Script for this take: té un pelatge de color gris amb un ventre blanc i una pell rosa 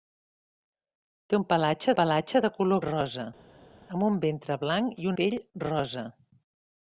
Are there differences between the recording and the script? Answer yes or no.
yes